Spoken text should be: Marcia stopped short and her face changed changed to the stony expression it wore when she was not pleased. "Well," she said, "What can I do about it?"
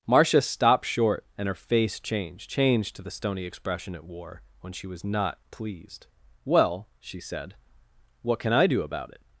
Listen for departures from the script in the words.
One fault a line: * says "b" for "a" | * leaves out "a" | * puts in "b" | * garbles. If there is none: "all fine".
all fine